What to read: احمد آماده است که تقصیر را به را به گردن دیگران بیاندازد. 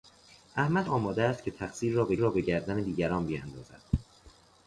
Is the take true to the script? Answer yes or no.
yes